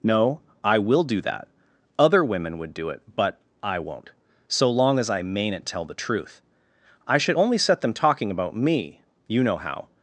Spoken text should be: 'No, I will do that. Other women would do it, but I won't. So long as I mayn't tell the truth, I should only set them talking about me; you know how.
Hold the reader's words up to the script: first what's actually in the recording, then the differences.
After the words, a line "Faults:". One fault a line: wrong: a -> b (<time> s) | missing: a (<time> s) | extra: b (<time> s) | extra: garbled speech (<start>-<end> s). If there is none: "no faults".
'No, I will do that. Other women would do it, but I won't. So long as I mayn't tell the truth, I should only set them talking about me; you know how.
Faults:
no faults